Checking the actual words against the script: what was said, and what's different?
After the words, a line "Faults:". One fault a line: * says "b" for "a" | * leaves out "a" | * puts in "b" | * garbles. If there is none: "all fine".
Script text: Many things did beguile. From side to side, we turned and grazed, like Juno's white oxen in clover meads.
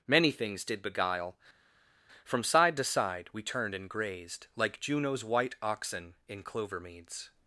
Many things did beguile. From side to side, we turned and grazed, like Juno's white oxen in clover meads.
Faults:
all fine